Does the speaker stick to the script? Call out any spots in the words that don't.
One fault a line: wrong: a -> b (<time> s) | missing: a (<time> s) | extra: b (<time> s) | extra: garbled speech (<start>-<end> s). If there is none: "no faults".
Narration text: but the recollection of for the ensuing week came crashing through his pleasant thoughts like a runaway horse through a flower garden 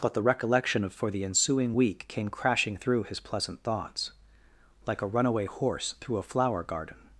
no faults